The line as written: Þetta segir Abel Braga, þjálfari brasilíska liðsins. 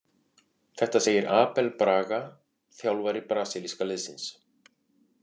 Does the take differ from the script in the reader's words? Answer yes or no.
no